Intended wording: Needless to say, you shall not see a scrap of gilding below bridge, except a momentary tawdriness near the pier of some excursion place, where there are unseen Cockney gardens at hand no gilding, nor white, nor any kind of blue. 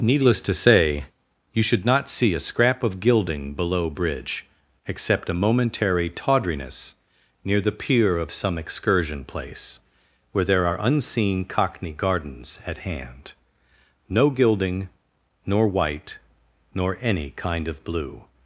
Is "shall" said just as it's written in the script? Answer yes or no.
no